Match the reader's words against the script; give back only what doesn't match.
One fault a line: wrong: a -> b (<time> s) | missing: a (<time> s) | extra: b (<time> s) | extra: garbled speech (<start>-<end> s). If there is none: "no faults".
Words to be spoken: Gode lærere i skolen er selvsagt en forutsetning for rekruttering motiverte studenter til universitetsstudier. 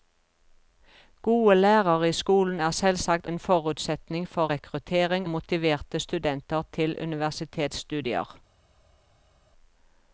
no faults